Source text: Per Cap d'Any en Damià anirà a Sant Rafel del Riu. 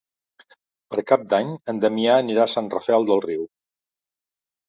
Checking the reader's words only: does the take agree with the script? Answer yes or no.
yes